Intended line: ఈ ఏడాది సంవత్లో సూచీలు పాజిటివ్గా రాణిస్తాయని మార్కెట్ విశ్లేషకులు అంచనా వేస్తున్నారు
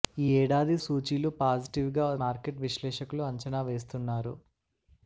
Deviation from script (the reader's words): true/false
true